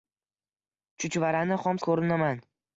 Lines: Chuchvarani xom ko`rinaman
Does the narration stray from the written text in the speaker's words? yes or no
no